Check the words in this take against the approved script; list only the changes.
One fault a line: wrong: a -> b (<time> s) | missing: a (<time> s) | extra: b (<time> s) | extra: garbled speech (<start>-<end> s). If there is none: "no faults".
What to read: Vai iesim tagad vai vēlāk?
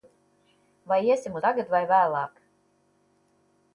no faults